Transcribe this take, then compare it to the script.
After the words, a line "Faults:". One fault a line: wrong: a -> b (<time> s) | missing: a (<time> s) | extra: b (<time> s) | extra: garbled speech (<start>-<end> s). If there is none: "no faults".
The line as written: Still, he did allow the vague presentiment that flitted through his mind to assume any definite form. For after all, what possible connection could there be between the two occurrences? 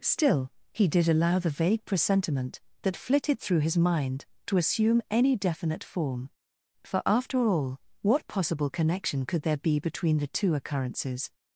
Still, he did allow the vague presentiment that flitted through his mind to assume any definite form. For after all, what possible connection could there be between the two occurrences?
Faults:
no faults